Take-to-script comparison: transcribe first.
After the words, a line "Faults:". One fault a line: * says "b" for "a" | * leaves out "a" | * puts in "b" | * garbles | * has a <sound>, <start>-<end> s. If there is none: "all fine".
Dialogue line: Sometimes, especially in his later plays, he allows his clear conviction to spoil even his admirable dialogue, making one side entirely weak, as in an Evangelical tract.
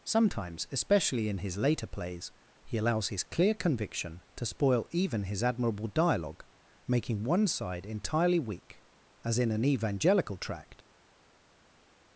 Sometimes, especially in his later plays, he allows his clear conviction to spoil even his admirable dialogue, making one side entirely weak, as in an Evangelical tract.
Faults:
all fine